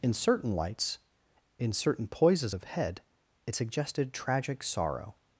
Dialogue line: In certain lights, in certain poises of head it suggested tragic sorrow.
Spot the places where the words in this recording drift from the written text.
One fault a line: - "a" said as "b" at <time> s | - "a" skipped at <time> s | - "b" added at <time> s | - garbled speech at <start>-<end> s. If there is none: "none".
none